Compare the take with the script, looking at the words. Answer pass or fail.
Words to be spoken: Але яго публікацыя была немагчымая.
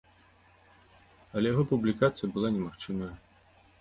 pass